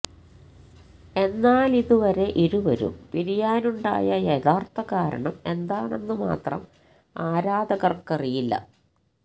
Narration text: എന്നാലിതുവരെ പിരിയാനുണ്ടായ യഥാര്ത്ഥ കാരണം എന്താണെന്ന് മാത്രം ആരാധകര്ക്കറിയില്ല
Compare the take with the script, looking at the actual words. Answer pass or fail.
fail